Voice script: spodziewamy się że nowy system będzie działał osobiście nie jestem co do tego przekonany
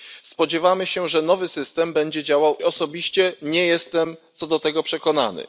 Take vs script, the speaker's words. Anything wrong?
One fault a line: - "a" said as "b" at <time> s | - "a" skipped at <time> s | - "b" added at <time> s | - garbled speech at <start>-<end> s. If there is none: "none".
none